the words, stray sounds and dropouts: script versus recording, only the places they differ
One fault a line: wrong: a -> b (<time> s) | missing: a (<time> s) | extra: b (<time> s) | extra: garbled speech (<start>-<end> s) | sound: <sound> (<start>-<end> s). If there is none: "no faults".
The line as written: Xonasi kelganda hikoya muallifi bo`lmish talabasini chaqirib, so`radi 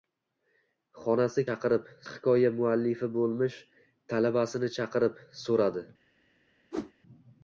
wrong: kelganda -> chaqirib (1.5 s)
sound: whoosh (6.7-6.9 s)